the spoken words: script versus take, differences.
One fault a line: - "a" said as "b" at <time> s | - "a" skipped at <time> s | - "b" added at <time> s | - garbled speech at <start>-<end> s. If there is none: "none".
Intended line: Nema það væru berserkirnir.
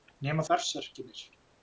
- "það væru" skipped at 0.5 s